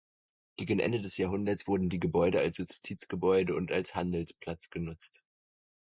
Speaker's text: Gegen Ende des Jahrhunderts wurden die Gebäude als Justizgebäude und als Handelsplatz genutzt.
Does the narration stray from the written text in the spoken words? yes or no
no